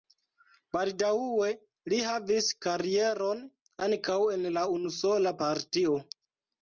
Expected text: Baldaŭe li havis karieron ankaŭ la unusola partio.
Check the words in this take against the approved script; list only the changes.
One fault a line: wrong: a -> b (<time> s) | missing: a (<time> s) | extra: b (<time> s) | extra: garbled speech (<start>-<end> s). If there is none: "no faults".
extra: en (4.4 s)